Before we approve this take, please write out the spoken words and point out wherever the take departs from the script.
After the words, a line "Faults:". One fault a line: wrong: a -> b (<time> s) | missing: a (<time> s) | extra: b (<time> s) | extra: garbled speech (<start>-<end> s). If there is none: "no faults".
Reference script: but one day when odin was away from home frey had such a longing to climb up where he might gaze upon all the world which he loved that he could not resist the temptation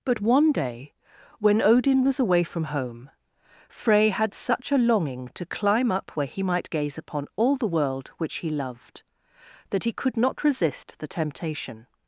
but one day when odin was away from home frey had such a longing to climb up where he might gaze upon all the world which he loved that he could not resist the temptation
Faults:
no faults